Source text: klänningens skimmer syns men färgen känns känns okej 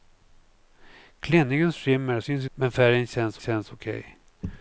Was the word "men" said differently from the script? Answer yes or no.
no